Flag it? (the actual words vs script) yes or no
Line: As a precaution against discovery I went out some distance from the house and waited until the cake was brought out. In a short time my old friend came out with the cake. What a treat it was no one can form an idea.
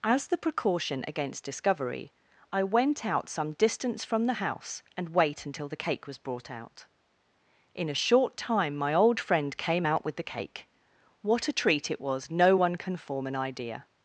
yes